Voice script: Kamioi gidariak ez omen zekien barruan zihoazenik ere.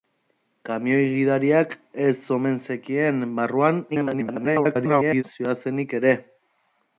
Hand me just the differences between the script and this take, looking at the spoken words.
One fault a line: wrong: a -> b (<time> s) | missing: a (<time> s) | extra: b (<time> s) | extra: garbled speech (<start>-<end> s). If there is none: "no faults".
extra: garbled speech (3.9-5.2 s)